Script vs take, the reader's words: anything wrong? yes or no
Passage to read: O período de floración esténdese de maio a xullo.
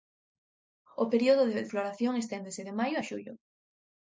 no